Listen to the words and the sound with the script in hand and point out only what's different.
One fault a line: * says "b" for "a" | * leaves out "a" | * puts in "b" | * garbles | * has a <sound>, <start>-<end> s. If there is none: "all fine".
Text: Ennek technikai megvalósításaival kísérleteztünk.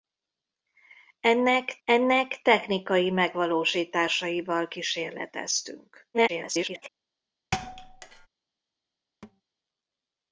* puts in "ennek"
* garbles
* has a thud, 7.5-8.3 s
* has a thud, 9.2-9.4 s